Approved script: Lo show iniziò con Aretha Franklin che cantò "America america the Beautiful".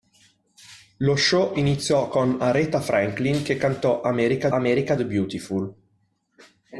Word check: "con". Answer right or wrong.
right